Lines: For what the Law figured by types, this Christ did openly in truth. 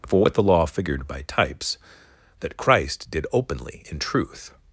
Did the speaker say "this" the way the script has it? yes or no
no